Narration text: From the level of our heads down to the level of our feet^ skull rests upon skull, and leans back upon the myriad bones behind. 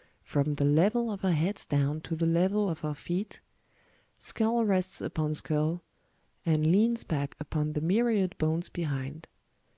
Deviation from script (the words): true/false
false